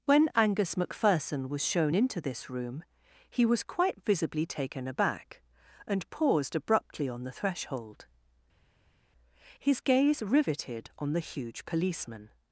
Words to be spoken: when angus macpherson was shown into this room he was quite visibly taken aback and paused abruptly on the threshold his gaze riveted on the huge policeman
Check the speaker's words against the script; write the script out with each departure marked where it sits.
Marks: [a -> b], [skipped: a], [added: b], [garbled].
when angus macpherson was shown into this room he was quite visibly taken aback and paused abruptly on the threshold his gaze riveted on the huge policeman